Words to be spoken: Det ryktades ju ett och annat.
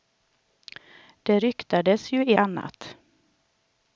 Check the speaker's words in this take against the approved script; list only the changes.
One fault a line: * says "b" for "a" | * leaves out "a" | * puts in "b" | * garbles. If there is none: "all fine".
* leaves out "ett och"